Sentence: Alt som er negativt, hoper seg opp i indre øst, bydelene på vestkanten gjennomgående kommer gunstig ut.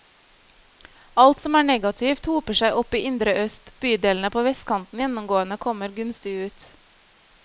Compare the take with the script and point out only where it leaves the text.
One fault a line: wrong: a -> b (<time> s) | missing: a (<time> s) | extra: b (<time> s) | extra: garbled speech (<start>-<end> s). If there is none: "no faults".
no faults